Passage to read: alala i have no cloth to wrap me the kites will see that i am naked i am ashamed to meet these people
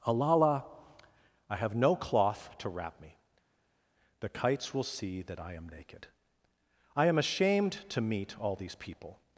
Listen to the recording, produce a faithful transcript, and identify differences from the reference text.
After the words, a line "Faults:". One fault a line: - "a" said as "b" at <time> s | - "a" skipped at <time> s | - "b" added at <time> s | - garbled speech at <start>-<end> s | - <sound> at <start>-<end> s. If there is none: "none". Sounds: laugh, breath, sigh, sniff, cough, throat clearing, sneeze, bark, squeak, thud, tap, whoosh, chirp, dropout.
alala i have no cloth to wrap me the kites will see that i am naked i am ashamed to meet all these people
Faults:
- "all" added at 8.4 s